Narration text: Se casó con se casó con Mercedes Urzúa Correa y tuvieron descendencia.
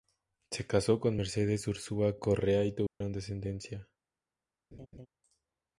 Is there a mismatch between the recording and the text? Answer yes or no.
yes